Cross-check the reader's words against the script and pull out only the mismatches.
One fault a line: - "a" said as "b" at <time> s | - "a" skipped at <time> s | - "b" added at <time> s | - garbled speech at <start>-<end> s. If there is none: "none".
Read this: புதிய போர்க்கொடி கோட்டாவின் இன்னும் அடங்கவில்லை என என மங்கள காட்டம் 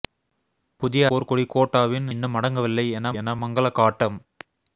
none